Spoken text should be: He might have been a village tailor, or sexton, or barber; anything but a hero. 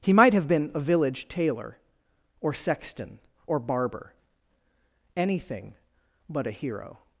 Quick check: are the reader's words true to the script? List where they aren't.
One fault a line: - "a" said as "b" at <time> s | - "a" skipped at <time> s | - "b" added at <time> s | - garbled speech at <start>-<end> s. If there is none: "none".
none